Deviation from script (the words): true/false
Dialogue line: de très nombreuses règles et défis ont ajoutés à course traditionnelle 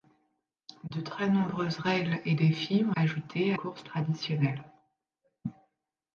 false